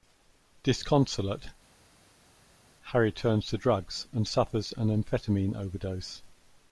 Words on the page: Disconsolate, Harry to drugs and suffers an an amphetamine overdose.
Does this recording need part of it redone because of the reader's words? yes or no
yes